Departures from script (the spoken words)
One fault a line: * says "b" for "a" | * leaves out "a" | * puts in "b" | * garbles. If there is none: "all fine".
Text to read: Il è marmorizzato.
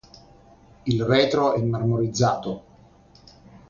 * puts in "retro"